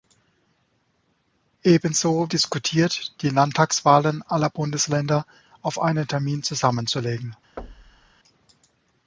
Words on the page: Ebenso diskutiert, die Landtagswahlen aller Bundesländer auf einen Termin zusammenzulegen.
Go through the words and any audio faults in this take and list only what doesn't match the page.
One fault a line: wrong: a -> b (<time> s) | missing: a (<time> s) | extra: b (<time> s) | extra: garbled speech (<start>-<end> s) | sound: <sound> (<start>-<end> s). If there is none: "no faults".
sound: thud (7.6-8.1 s)